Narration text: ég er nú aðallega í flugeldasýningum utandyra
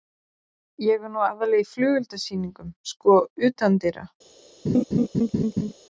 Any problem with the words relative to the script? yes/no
yes